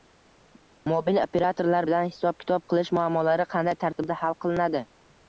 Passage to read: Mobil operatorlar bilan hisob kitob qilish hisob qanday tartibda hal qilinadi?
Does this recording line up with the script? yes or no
no